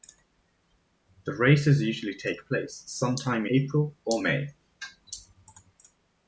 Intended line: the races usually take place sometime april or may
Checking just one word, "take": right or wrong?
right